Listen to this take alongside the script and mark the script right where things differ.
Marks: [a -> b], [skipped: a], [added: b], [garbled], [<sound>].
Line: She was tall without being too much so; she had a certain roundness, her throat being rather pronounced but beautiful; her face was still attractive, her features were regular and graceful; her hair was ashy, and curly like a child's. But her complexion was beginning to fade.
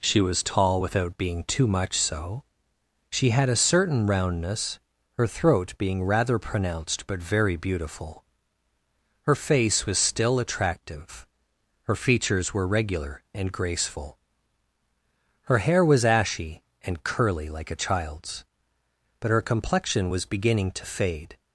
She was tall without being too much so; she had a certain roundness, her throat being rather pronounced but [added: very] beautiful; her face was still attractive, her features were regular and graceful; her hair was ashy, and curly like a child's. But her complexion was beginning to fade.